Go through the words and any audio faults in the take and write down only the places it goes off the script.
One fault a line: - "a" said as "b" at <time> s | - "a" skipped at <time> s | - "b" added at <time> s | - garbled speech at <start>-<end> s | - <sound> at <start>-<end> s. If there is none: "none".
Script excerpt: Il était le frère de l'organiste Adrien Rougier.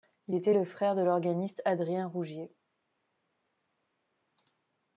none